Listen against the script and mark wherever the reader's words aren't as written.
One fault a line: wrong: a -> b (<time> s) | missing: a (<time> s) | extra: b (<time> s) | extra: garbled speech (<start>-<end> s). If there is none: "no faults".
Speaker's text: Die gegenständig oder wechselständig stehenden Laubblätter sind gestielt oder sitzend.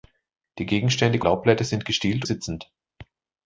missing: oder wechselständig stehenden (1.2 s)
missing: oder (2.2 s)